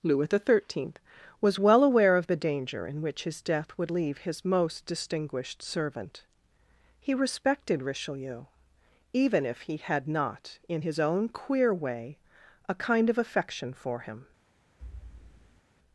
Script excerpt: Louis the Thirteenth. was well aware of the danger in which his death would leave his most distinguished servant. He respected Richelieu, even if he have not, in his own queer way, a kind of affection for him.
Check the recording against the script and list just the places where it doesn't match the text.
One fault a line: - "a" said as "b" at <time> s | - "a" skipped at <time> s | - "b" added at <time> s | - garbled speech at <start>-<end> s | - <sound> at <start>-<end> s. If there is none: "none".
- "have" said as "had" at 9.8 s
- thud at 14.8-15.6 s